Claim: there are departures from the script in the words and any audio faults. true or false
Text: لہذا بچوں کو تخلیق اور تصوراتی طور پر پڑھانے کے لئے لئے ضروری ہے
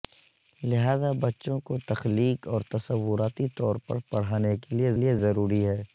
false